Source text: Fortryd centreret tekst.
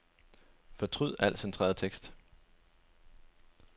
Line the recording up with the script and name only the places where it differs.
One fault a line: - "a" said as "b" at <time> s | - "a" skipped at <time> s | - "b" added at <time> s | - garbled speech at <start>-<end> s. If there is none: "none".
- "al" added at 1.2 s